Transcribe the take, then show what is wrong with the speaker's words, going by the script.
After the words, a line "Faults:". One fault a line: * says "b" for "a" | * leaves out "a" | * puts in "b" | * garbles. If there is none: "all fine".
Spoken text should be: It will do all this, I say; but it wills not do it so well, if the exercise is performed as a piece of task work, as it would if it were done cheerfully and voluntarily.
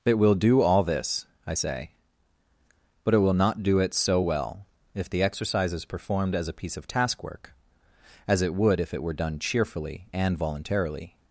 It will do all this, I say; but it will not do it so well, if the exercise is performed as a piece of task work, as it would if it were done cheerfully and voluntarily.
Faults:
* says "will" for "wills"